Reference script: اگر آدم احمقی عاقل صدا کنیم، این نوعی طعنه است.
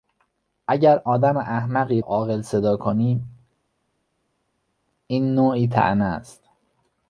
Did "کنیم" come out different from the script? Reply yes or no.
no